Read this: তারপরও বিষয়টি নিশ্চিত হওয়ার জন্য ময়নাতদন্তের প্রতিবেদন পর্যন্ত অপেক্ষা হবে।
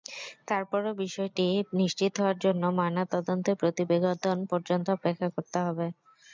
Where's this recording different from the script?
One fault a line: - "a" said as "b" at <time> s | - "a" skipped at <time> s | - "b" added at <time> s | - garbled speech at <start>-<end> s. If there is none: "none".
- "করতে" added at 5.3 s